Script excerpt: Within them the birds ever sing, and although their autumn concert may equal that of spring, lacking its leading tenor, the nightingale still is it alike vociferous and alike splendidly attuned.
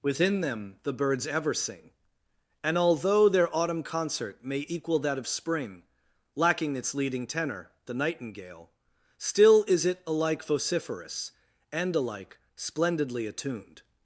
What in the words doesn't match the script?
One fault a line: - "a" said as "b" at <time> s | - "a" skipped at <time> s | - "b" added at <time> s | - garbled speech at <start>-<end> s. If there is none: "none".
none